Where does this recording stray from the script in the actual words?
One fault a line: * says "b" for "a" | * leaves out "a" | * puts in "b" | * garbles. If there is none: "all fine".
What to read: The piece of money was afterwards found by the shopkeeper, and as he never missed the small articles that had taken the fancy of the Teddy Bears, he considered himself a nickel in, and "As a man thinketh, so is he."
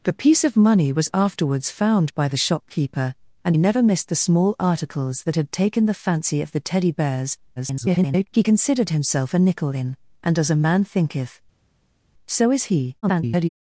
* leaves out "as he"
* garbles
* garbles